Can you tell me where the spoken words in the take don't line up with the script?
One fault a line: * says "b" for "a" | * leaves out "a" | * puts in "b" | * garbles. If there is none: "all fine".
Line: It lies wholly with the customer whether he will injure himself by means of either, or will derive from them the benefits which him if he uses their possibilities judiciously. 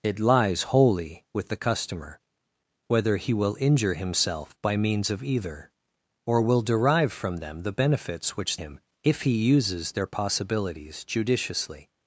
all fine